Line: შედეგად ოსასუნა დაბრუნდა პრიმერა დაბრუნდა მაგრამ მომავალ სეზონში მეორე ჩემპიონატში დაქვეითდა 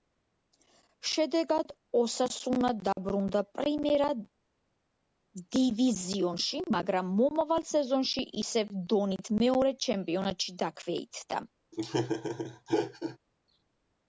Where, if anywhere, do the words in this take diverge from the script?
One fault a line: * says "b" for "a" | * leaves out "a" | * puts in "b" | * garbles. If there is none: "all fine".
* says "დივიზიონში" for "დაბრუნდა"
* puts in "ისევ დონით"